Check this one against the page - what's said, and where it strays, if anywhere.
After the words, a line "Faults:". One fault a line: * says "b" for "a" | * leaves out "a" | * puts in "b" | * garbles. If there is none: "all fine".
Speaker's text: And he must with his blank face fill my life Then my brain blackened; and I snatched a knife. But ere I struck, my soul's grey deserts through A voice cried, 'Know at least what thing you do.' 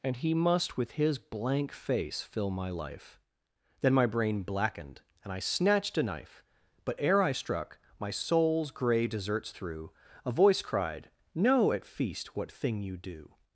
And he must with his blank face fill my life Then my brain blackened; and I snatched a knife. But ere I struck, my soul's grey deserts through A voice cried, 'Know at feast what thing you do.'
Faults:
* says "feast" for "least"